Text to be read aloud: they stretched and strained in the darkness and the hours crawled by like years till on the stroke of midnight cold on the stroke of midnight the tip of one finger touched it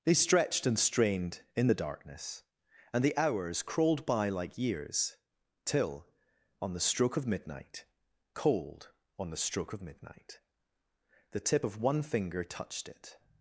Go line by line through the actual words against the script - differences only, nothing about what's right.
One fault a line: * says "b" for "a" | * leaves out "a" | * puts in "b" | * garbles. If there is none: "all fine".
all fine